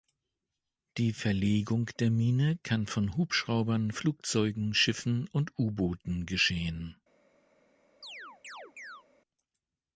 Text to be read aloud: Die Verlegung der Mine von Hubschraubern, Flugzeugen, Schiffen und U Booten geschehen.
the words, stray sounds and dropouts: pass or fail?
fail